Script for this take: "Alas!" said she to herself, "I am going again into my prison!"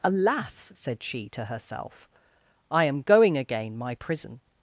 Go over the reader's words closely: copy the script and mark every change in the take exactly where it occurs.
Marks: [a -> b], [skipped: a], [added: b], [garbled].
"Alas!" said she to herself, "I am going again [skipped: into] my prison!"